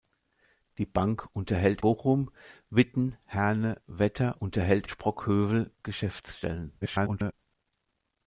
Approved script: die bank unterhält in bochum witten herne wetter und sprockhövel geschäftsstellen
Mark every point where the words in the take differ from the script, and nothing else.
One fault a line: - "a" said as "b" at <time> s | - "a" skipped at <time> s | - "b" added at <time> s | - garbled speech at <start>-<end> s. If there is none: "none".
- "in" skipped at 1.8 s
- "und" said as "unterhält" at 4.4 s
- garbled speech at 6.8-7.3 s